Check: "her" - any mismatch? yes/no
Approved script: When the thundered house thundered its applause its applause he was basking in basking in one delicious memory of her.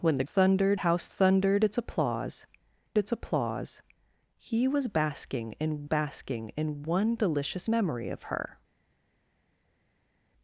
no